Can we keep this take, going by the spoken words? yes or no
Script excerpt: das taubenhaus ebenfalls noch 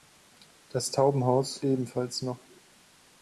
yes